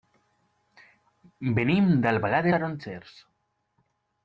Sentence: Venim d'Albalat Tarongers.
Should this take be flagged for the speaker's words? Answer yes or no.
no